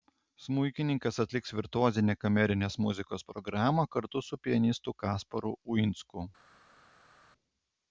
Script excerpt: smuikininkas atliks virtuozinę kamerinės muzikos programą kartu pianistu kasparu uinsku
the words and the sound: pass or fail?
fail